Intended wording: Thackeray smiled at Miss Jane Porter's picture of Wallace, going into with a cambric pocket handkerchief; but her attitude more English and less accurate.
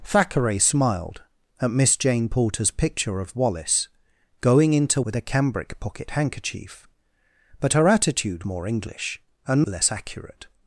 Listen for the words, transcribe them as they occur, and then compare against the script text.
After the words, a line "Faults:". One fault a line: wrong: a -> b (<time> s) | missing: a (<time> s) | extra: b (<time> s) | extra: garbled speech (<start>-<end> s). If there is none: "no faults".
Thackeray smiled at Miss Jane Porter's picture of Wallace, going into with a cambric pocket handkerchief; but her attitude more English and less accurate.
Faults:
no faults